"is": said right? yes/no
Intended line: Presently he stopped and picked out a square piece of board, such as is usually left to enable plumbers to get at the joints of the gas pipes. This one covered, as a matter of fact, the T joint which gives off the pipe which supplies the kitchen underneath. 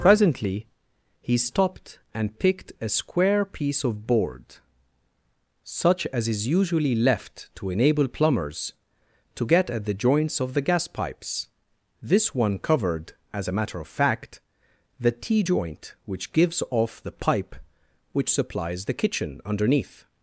yes